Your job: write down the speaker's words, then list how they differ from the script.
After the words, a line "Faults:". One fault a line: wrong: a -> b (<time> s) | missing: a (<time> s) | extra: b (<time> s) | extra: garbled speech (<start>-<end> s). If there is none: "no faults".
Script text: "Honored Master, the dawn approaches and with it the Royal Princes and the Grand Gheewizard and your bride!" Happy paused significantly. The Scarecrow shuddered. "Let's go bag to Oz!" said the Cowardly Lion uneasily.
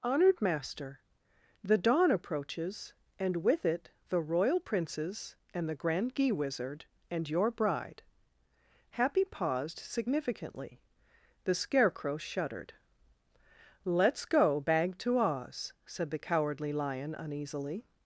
"Honored Master, the dawn approaches and with it the Royal Princes and the Grand Gheewizard and your bride!" Happy paused significantly. The Scarecrow shuddered. "Let's go bag to Oz!" said the Cowardly Lion uneasily.
Faults:
no faults